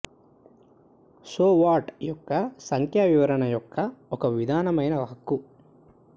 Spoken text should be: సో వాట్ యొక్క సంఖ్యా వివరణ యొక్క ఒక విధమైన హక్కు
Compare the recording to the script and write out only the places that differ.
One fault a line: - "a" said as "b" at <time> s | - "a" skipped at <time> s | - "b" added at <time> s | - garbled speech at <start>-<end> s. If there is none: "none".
none